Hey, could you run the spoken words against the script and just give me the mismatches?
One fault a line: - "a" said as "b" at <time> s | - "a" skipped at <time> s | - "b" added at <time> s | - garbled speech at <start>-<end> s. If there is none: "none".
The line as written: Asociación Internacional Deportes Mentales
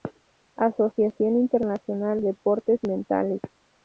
none